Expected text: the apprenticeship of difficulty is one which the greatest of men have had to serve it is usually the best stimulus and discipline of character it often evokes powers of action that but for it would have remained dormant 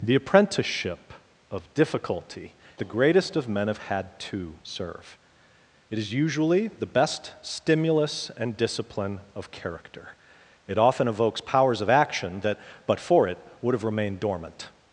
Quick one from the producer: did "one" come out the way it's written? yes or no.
no